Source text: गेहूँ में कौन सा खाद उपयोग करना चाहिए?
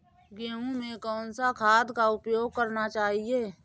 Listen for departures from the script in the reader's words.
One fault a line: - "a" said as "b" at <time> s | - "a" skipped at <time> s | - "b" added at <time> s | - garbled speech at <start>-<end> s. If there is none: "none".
- "का" added at 1.9 s